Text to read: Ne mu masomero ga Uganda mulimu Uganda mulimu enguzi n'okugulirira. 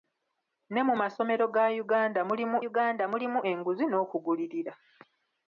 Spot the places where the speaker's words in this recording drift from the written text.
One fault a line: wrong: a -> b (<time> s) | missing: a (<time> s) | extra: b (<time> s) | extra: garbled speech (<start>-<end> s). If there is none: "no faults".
no faults